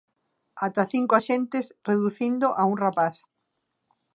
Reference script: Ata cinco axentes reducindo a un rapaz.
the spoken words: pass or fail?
pass